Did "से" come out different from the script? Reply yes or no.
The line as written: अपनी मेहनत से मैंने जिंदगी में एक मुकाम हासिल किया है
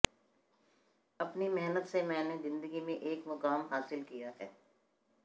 no